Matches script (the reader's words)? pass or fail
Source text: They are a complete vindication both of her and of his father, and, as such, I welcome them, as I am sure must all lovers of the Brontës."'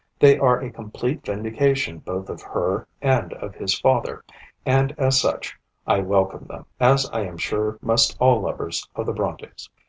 pass